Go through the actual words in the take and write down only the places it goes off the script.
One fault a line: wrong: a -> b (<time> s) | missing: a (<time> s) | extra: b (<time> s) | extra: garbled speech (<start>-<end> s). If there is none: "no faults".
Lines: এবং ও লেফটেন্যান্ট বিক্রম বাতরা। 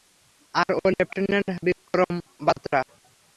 wrong: এবং -> আর (0.6 s)